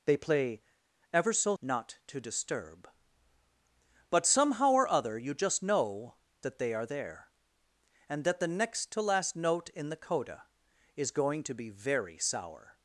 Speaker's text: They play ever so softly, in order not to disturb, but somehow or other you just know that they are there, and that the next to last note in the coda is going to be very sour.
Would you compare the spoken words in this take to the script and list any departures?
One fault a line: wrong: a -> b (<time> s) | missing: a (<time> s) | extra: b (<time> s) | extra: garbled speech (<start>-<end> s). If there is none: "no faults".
missing: softly in order (1.6 s)